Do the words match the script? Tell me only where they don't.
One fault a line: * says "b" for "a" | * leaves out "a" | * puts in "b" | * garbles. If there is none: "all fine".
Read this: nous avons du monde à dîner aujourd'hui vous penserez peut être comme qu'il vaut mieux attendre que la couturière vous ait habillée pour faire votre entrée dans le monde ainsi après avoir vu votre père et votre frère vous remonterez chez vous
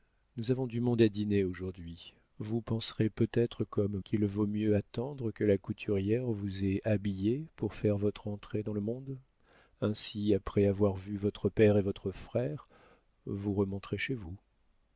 all fine